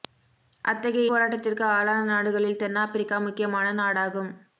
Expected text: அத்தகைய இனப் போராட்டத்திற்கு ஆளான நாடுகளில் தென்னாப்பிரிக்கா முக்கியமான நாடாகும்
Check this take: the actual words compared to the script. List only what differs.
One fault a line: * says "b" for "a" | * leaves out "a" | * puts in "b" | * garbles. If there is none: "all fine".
* leaves out "இனப்"